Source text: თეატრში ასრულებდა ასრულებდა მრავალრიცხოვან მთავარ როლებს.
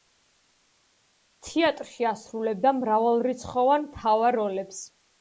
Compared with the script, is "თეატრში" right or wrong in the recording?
right